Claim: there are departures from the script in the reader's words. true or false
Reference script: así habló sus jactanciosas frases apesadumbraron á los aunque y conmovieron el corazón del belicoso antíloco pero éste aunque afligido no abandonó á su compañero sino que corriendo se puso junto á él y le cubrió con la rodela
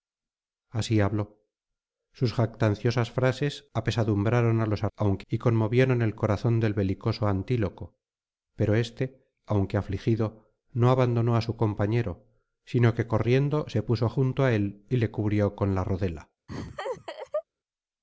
false